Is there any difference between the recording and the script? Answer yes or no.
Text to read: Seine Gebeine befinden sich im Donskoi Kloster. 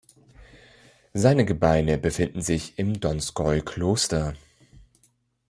no